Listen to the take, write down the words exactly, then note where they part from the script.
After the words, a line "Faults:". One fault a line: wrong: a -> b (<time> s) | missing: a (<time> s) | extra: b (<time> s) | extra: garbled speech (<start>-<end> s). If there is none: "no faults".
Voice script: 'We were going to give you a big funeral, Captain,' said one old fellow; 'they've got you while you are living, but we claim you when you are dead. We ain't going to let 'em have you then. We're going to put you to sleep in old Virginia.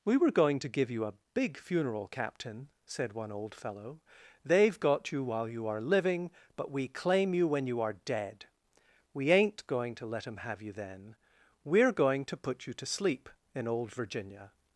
'We were going to give you a big funeral, Captain,' said one old fellow; 'they've got you while you are living, but we claim you when you are dead. We ain't going to let 'em have you then. We're going to put you to sleep in old Virginia.
Faults:
no faults